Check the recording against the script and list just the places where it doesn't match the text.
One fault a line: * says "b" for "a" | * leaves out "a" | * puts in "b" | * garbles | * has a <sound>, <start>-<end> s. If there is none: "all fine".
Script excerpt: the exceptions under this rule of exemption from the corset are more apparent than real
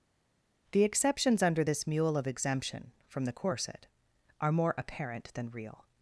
* says "mule" for "rule"